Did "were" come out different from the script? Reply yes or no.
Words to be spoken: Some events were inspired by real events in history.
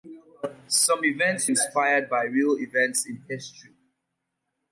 yes